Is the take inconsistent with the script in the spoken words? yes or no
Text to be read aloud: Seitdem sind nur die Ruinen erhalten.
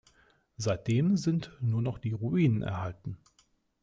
yes